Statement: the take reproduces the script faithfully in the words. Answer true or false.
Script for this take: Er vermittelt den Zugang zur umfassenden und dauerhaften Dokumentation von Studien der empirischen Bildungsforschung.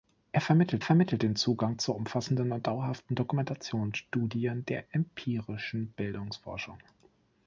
false